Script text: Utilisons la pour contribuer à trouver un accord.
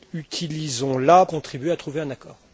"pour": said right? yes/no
no